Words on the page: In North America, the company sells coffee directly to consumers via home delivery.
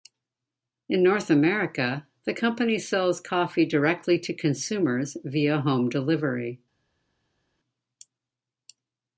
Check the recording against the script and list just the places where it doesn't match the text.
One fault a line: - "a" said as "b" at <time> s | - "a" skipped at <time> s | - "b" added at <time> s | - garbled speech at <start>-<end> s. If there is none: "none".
none